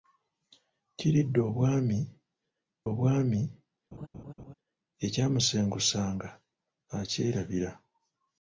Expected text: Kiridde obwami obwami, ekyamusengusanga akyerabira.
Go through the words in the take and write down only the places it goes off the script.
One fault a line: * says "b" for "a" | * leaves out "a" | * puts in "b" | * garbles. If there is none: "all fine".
all fine